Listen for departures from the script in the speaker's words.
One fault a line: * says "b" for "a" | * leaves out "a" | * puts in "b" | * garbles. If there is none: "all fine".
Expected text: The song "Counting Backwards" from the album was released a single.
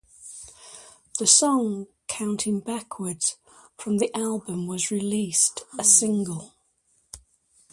all fine